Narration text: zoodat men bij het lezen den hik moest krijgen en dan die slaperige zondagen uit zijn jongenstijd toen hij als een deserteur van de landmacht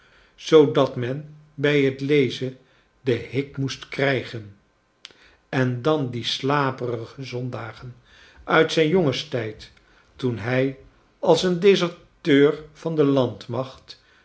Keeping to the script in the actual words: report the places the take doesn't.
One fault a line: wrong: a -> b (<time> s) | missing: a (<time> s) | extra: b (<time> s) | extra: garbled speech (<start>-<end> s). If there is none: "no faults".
no faults